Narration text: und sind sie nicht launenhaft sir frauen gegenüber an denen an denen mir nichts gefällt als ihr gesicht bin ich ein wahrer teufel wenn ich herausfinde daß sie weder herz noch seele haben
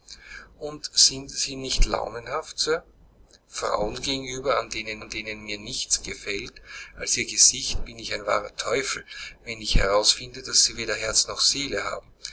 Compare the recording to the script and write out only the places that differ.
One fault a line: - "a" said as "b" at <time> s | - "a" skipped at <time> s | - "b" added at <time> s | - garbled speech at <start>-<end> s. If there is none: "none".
none